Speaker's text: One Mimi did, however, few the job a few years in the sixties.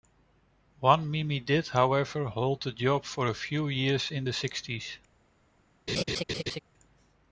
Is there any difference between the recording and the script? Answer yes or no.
yes